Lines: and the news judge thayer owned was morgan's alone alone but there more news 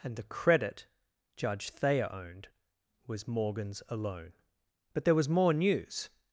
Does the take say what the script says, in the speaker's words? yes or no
no